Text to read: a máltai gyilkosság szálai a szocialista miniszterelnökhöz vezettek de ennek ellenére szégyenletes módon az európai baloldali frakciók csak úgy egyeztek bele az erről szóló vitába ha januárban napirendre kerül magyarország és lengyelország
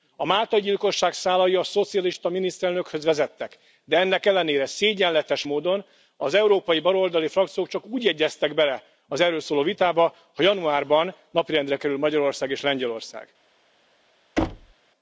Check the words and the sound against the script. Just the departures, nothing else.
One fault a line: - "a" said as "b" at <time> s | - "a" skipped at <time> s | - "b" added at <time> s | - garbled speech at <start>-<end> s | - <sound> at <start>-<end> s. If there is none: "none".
- thud at 14.4-14.7 s